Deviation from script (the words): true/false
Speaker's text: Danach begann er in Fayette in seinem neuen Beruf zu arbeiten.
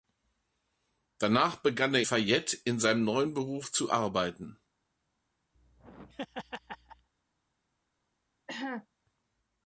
true